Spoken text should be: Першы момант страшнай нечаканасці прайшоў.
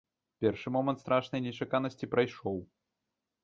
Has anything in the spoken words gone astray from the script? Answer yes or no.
no